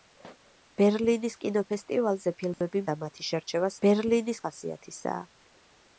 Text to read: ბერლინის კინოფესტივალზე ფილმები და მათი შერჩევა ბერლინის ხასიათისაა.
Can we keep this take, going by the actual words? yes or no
yes